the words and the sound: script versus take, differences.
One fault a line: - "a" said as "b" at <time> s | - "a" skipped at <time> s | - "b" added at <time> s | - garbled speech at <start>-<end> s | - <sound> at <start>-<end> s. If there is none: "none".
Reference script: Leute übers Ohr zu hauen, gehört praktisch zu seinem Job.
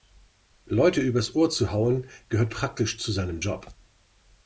none